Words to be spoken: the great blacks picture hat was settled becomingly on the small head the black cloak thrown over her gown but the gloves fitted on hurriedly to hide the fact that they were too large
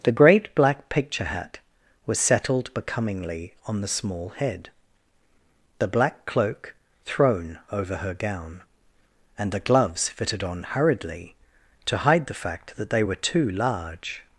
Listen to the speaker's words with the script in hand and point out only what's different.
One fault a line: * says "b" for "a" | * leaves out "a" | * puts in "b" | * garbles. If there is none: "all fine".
* says "black" for "blacks"
* says "and" for "but"